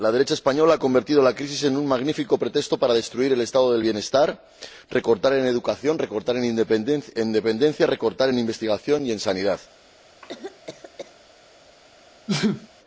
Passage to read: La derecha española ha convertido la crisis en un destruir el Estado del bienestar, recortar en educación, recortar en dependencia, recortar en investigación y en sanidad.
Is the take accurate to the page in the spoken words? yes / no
no